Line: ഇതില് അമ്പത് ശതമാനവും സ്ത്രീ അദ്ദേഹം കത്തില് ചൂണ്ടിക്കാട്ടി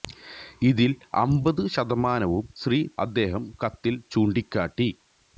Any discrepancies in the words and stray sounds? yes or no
no